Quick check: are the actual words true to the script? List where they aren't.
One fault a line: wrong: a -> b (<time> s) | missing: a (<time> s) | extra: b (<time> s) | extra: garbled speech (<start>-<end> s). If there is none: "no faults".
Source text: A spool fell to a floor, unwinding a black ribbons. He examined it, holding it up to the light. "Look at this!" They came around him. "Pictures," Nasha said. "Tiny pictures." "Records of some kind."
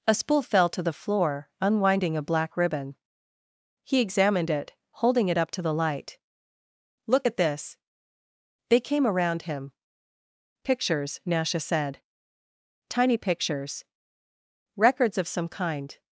wrong: a -> the (0.8 s)
wrong: ribbons -> ribbon (2.6 s)